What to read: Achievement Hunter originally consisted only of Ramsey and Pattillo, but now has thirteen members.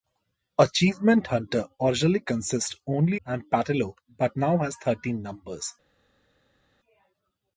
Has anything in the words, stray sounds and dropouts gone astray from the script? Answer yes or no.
yes